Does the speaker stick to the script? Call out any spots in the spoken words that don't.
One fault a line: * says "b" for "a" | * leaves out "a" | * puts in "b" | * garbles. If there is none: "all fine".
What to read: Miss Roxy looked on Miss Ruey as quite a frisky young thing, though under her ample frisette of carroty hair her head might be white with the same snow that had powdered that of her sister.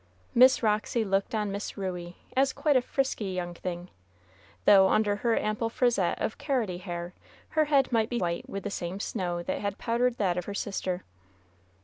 all fine